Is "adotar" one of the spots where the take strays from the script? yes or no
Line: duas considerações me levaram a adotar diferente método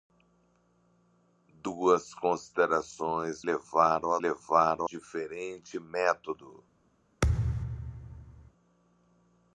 yes